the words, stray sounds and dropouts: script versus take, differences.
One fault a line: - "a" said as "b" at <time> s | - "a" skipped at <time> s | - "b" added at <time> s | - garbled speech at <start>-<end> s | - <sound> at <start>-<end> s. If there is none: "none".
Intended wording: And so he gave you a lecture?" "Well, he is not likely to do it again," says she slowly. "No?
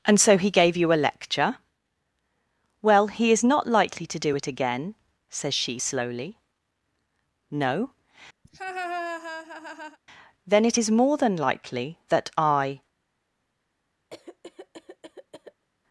- laugh at 8.4-10.0 s
- "Then it is more than likely that I" added at 10.5 s
- cough at 14.1-15.7 s